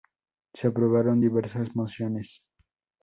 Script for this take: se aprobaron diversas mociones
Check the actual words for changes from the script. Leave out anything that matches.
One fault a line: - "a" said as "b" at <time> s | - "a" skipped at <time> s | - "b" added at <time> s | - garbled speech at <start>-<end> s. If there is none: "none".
none